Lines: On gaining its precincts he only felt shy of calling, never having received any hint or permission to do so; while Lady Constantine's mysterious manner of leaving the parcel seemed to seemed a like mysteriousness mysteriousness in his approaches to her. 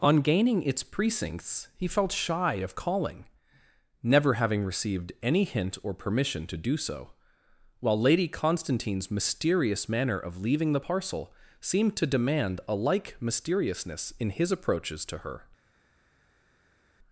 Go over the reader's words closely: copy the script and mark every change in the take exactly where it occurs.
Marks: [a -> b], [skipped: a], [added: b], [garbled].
On gaining its precincts he [skipped: only] felt shy of calling, never having received any hint or permission to do so; while Lady Constantine's mysterious manner of leaving the parcel seemed to [seemed -> demand] a like mysteriousness [skipped: mysteriousness] in his approaches to her.